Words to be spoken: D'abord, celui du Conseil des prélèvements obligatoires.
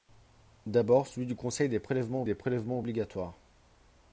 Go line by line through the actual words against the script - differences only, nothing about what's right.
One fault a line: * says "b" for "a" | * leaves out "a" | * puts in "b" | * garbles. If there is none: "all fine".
* puts in "des prélèvements"